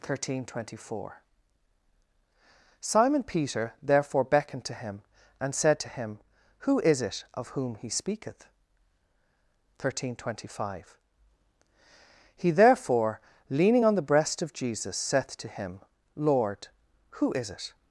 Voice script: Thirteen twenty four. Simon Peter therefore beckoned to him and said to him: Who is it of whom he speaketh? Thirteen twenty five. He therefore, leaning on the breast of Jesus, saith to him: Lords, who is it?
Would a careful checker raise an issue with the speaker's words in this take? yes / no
yes